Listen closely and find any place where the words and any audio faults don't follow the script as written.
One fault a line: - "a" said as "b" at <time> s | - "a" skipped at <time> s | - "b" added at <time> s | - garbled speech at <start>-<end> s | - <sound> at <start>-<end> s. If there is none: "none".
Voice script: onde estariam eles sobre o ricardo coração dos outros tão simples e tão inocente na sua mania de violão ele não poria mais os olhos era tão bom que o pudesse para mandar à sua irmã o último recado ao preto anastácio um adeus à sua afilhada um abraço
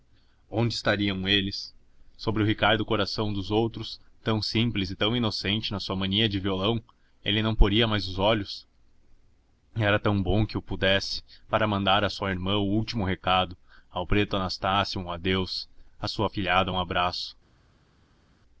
none